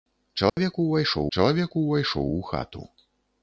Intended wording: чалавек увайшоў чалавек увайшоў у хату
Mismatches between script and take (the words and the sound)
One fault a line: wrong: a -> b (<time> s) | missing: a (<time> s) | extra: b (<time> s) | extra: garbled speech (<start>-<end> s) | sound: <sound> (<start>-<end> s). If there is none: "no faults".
sound: dropout (0.5-0.6 s)